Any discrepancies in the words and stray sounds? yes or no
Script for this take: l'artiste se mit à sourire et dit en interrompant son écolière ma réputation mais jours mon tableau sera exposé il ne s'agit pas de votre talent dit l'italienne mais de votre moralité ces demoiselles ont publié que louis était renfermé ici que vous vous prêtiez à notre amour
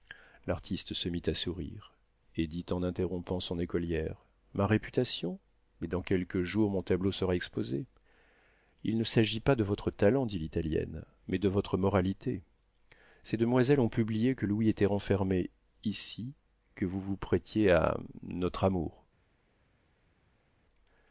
yes